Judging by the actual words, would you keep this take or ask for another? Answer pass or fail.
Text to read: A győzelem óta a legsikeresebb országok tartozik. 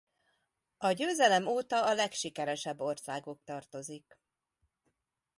pass